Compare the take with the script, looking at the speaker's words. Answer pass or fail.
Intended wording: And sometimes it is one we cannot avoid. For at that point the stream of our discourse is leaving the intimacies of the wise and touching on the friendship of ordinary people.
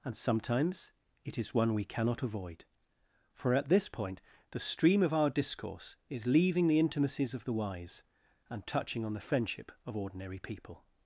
fail